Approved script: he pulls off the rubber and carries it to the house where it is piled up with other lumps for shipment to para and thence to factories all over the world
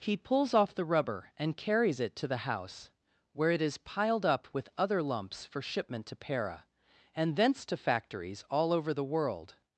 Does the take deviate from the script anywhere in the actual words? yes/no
no